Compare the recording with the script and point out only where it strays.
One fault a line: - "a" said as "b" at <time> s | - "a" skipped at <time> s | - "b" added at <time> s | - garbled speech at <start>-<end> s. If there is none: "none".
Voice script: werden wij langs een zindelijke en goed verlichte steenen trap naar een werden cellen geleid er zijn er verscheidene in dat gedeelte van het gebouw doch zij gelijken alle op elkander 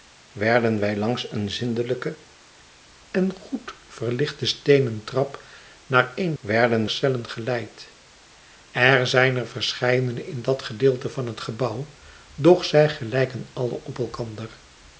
none